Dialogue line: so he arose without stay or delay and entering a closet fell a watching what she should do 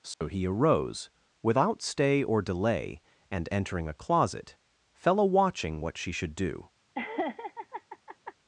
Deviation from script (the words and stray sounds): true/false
true